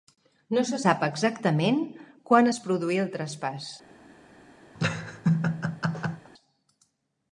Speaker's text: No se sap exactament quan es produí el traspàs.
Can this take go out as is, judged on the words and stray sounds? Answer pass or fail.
fail